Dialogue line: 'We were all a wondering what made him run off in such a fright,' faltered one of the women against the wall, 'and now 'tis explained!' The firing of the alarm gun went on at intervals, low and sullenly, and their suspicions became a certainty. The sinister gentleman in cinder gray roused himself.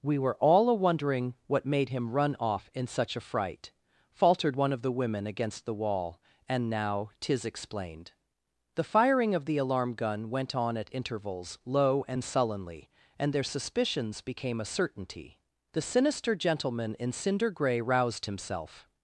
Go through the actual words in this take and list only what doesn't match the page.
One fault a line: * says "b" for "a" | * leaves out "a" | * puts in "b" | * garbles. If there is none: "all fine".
all fine